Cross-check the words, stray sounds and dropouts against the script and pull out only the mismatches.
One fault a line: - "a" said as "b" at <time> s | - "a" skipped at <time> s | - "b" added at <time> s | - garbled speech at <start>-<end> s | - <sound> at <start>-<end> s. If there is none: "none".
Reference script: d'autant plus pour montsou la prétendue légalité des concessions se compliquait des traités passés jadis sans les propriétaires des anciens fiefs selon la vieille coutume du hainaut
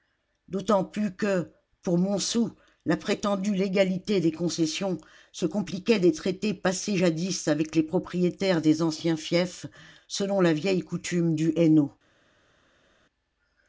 - "que" added at 1.1 s
- "sans" said as "avec" at 7.5 s